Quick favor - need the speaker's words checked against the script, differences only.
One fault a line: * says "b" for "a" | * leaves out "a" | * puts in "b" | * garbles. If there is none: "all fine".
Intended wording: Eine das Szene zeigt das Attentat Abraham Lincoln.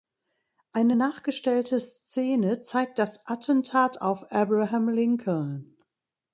* says "nachgestellte" for "das"
* puts in "auf"